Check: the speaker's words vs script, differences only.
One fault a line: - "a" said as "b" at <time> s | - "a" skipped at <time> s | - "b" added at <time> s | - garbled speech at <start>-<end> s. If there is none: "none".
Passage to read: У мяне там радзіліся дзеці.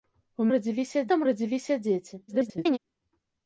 - "мяне" said as "радзіліся" at 0.5 s
- garbled speech at 2.3-2.8 s